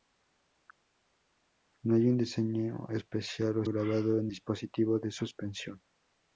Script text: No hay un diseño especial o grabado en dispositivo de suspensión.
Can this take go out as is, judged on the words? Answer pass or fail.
pass